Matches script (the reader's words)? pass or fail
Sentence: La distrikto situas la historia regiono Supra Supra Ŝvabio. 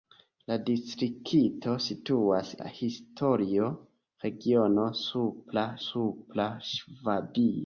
pass